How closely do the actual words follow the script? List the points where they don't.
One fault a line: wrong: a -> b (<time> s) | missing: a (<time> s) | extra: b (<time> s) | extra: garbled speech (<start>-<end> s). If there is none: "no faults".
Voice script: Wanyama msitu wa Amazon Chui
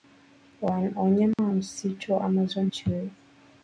no faults